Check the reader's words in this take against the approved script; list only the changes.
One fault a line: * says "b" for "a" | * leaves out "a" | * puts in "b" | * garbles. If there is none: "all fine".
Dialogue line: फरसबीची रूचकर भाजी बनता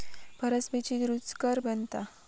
* leaves out "भाजी"